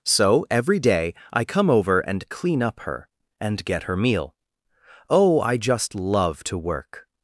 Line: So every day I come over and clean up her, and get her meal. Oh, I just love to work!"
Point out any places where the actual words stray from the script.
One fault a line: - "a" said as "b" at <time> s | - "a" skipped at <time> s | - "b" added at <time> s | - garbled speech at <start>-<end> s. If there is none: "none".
none